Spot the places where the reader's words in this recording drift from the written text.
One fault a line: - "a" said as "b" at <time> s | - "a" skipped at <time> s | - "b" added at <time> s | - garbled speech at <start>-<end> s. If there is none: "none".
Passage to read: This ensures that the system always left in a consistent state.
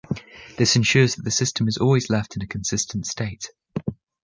- "is" added at 1.7 s